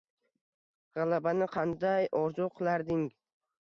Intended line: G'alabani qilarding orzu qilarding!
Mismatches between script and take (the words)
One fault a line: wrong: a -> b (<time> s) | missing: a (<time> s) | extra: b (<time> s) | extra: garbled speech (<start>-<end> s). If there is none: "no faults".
wrong: qilarding -> qanday (1.6 s)